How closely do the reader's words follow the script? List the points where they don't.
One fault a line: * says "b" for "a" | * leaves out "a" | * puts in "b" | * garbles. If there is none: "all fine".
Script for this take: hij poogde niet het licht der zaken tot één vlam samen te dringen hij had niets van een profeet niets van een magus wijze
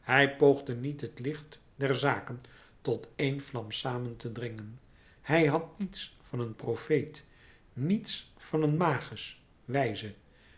all fine